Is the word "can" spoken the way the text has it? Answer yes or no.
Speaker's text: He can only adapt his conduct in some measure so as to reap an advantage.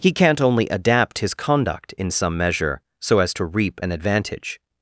no